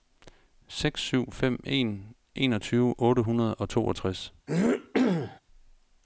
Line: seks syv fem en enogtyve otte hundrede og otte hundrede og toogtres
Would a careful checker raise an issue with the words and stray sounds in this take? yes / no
yes